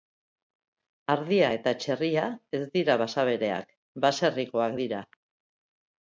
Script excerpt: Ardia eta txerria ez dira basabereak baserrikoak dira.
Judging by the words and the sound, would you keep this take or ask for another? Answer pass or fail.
pass